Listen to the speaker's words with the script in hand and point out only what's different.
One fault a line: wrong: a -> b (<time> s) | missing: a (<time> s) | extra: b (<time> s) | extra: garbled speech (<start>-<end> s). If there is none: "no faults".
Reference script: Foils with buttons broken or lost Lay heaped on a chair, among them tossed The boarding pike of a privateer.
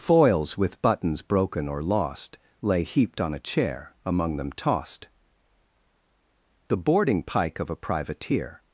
no faults